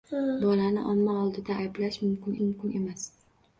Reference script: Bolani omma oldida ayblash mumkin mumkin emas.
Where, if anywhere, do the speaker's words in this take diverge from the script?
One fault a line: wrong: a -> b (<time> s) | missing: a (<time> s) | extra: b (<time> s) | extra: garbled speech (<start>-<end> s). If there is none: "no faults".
no faults